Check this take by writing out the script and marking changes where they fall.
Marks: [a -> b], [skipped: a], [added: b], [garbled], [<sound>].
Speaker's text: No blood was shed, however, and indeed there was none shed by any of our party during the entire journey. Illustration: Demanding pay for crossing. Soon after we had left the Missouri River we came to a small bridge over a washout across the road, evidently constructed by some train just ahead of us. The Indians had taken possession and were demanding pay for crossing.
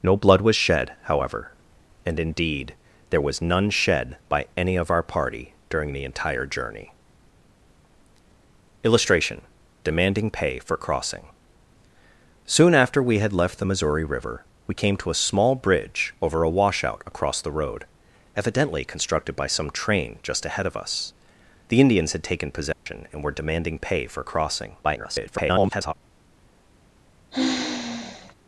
No blood was shed, however, and indeed there was none shed by any of our party during the entire journey. Illustration: Demanding pay for crossing. Soon after we had left the Missouri River we came to a small bridge over a washout across the road, evidently constructed by some train just ahead of us. The Indians had taken possession [dropout] and were demanding pay for crossing. [garbled] [sigh]